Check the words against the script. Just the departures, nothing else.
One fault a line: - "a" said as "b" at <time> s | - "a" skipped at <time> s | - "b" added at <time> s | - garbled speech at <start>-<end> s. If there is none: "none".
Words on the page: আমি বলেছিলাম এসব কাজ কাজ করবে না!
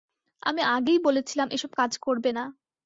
- "আগেই" added at 0.7 s
- "কাজ" skipped at 1.9 s